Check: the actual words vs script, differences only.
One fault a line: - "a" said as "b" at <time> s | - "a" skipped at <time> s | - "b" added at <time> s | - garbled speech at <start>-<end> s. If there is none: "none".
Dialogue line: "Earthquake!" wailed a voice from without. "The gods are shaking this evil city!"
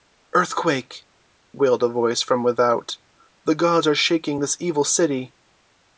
none